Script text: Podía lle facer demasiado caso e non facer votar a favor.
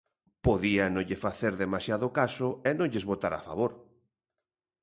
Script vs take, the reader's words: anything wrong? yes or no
yes